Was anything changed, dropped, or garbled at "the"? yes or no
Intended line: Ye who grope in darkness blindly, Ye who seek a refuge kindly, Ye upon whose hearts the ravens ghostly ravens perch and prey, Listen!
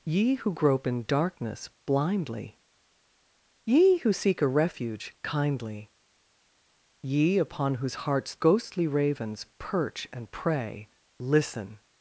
yes